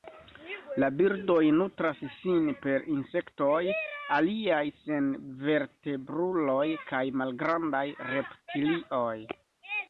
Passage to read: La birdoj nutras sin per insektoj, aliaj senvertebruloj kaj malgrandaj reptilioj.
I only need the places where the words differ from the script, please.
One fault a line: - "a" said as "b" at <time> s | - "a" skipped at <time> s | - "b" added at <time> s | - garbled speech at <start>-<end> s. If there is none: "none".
none